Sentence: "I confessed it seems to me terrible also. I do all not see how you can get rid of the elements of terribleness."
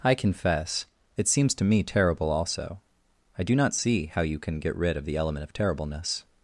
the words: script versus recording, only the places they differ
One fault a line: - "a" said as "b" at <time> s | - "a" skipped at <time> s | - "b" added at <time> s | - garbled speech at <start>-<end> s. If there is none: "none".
- "confessed" said as "confess" at 0.1 s
- "all" skipped at 3.5 s
- "elements" said as "element" at 5.2 s